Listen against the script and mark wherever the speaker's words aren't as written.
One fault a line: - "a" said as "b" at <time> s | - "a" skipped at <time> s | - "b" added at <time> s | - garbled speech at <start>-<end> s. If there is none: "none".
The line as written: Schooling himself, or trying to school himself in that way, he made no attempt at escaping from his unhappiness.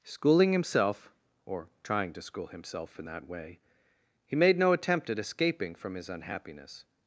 none